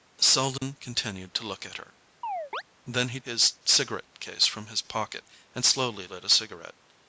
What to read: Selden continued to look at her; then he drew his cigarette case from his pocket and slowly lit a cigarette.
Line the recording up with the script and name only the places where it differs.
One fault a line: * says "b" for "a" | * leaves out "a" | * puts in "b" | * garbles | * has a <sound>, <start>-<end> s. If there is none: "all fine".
* has a dropout, 0.6-0.6 s
* has a chirp, 2.2-2.6 s
* leaves out "drew"